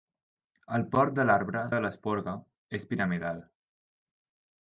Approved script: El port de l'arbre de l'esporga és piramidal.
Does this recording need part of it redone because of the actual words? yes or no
no